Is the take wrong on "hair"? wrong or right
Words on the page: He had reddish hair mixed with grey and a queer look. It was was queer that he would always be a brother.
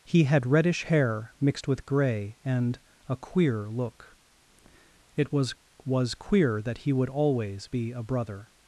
right